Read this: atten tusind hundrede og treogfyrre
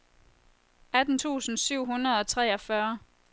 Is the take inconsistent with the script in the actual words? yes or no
yes